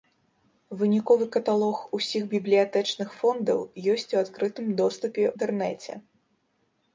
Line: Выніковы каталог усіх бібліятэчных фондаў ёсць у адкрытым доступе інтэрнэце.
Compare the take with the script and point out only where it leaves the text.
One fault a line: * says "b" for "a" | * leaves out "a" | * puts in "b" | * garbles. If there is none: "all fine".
all fine